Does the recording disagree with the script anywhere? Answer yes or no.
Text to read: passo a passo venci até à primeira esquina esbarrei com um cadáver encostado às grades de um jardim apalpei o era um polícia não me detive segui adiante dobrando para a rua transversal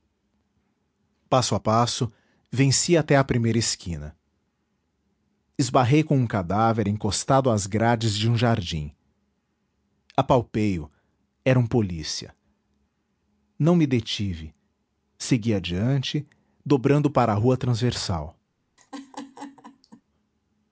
no